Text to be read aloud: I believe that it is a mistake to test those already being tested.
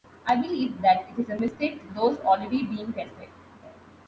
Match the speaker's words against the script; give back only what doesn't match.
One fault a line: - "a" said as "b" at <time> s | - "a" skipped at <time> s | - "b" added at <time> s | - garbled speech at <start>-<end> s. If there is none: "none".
- "test" skipped at 1.9 s